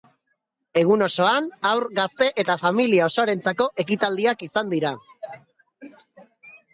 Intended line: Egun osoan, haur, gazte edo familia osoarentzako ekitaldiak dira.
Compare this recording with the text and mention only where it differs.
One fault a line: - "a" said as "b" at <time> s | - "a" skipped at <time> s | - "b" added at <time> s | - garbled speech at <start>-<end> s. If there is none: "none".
- "edo" said as "eta" at 2.4 s
- "izan" added at 4.5 s